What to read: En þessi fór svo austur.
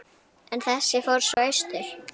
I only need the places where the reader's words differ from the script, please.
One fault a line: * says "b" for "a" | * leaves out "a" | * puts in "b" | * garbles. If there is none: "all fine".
all fine